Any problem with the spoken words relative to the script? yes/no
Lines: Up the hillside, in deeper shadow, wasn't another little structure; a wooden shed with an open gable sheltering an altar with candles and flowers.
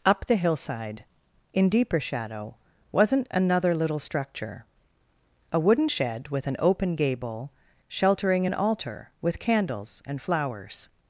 no